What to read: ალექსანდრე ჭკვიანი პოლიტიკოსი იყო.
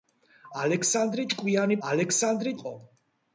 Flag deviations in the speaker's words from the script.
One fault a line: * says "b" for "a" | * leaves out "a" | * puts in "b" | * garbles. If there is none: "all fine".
* says "ალექსანდრე" for "პოლიტიკოსი"